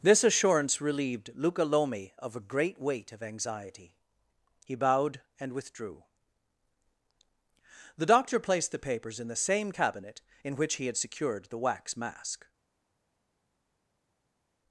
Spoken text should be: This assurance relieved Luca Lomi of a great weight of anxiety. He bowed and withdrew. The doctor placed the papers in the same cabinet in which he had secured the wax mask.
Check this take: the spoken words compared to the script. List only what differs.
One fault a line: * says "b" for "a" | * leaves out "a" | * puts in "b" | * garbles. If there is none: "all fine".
all fine